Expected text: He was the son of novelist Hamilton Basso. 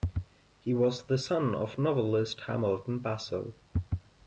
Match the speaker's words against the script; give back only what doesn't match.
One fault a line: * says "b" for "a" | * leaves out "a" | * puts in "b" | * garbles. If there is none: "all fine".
all fine